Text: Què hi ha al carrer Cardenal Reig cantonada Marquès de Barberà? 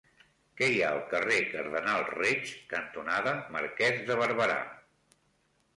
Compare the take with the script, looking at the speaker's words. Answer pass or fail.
pass